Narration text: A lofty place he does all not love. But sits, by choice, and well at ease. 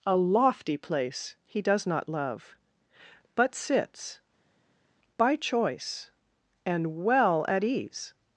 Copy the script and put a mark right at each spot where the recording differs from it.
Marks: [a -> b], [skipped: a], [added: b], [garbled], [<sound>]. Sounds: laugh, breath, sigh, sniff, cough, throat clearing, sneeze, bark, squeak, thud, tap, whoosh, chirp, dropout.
A lofty place he does [skipped: all] not love. But sits, by choice, and well at ease.